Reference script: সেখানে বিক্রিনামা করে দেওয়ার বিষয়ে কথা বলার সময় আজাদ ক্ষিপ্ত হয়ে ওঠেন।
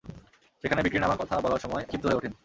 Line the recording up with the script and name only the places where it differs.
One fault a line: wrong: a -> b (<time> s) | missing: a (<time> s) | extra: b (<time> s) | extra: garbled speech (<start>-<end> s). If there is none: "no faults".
missing: করে দেওয়ার বিষয়ে (1.1 s)
missing: আজাদ (1.8 s)